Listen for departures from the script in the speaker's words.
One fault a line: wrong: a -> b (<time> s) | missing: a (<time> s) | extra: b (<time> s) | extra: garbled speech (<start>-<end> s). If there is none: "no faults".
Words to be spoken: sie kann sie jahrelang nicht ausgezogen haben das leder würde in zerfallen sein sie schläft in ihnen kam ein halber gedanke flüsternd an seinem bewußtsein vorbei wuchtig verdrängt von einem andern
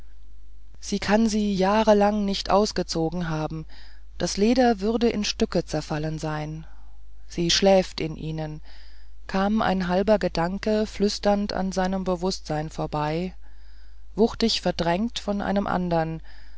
extra: stücke (5.2 s)